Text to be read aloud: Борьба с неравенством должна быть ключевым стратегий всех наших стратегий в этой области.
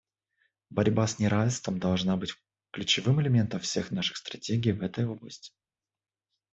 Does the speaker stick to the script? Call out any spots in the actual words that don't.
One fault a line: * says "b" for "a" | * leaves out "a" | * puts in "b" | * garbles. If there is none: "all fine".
* says "элементом" for "стратегий"